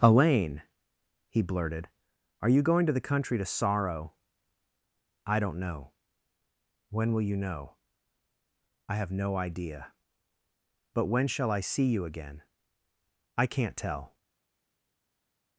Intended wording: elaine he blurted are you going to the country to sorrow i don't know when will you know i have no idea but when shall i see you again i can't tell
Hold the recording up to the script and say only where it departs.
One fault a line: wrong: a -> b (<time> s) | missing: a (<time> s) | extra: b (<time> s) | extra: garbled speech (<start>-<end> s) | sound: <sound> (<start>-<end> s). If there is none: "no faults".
no faults